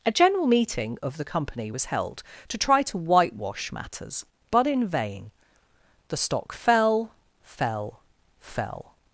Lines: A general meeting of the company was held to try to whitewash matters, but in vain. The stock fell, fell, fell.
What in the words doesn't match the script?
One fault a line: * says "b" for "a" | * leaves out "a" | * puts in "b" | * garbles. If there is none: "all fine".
all fine